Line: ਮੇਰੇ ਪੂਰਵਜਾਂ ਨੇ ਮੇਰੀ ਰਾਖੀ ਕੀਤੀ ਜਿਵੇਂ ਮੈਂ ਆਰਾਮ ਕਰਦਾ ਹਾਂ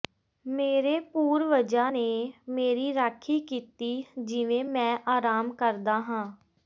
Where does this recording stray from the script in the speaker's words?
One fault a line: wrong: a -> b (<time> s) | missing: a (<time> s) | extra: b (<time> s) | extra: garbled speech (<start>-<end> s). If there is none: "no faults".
no faults